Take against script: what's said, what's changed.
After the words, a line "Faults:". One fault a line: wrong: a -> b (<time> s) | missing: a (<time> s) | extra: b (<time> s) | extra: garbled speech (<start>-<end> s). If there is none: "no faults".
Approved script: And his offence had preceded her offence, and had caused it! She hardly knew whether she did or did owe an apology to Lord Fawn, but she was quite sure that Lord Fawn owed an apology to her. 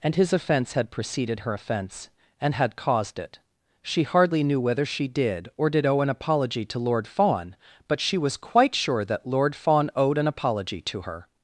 And his offence had preceded her offence, and had caused it! She hardly knew whether she did or did owe an apology to Lord Fawn, but she was quite sure that Lord Fawn owed an apology to her.
Faults:
no faults